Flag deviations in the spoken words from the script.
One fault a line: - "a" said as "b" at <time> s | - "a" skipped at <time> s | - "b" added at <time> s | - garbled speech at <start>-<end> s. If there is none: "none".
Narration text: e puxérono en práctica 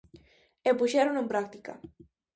none